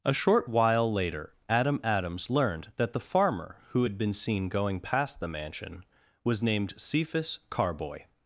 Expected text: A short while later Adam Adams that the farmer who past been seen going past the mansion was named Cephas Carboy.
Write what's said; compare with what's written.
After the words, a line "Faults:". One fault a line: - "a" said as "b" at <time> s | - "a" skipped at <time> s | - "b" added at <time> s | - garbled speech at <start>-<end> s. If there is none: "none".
A short while later Adam Adams learned that the farmer who had been seen going past the mansion was named Cephas Carboy.
Faults:
- "learned" added at 2.3 s
- "past" said as "had" at 3.8 s